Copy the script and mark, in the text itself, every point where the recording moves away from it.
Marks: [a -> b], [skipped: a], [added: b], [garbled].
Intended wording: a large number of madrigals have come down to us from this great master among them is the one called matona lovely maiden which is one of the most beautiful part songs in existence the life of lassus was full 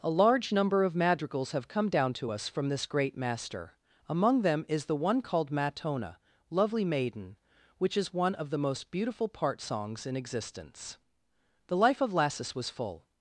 a large number of madrigals have come down to us from this great master among them is the one called matona lovely maiden which is one of the most beautiful part songs in existence the life of lassus was full